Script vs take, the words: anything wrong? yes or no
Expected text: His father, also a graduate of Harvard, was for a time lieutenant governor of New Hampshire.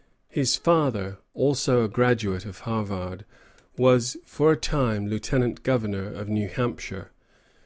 no